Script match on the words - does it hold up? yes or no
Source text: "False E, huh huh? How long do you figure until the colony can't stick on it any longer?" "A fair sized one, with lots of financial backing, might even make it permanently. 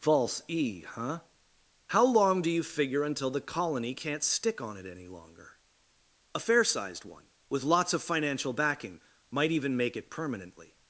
no